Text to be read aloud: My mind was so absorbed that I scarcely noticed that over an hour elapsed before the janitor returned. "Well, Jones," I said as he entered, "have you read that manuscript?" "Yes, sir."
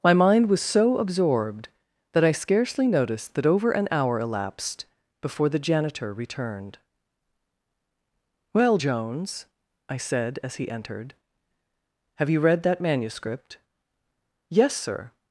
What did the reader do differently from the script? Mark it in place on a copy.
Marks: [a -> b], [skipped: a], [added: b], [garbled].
My mind was so absorbed that I scarcely noticed that over an hour elapsed before the janitor returned. "Well, Jones," I said as he entered, "have you read that manuscript?" "Yes, sir."